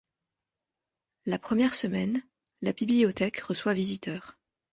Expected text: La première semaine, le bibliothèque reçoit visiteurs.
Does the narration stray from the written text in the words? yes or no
yes